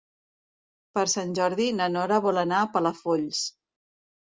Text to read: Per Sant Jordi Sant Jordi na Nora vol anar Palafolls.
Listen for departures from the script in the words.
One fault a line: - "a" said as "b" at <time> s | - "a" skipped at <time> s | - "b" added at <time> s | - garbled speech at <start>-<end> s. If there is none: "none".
- "Sant Jordi" skipped at 1.7 s
- "a" added at 2.6 s